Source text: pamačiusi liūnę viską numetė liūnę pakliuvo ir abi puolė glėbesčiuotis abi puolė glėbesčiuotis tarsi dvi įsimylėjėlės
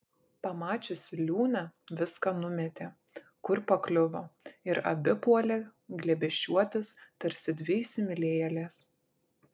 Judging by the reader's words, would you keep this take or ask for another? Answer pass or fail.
fail